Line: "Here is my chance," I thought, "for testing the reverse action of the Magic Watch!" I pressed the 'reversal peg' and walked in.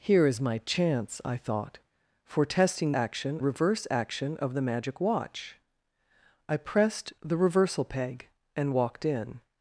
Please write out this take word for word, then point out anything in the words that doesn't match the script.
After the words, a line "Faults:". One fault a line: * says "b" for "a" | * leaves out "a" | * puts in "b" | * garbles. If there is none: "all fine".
"Here is my chance," I thought, "for testing action reverse action of the Magic Watch!" I pressed the 'reversal peg' and walked in.
Faults:
* says "action" for "the"